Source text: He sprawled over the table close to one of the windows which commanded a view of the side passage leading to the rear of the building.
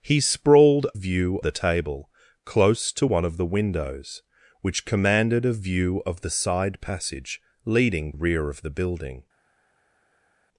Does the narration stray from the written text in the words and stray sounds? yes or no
yes